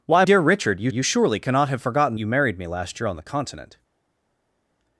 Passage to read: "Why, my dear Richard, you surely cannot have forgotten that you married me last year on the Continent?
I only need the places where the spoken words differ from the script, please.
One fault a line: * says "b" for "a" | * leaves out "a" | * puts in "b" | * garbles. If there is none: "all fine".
* leaves out "my"
* puts in "you"
* leaves out "that"